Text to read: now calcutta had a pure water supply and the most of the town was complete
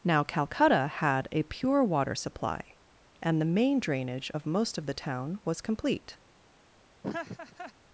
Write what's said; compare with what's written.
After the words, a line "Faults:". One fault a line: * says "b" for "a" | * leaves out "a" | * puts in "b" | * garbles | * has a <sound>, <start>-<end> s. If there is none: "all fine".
now calcutta had a pure water supply and the main drainage of most of the town was complete
Faults:
* puts in "main drainage of"
* has a laugh, 7.0-7.7 s